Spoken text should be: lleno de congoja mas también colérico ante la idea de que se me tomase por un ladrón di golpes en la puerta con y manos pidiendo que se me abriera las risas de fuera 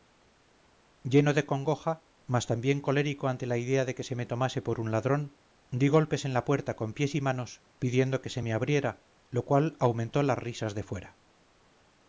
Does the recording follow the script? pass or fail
fail